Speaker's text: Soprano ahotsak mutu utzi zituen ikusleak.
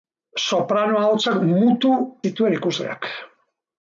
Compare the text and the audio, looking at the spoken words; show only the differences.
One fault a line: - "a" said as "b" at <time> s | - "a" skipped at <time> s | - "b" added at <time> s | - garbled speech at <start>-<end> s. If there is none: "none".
- "utzi" skipped at 1.9 s